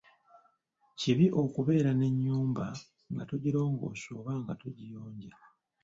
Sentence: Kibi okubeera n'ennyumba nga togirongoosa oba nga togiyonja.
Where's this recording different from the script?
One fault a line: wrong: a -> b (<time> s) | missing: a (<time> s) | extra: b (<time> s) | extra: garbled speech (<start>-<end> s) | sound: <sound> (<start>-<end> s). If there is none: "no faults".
no faults